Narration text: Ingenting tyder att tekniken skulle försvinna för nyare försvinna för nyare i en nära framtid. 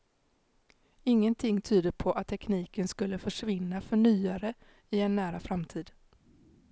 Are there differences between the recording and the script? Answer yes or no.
yes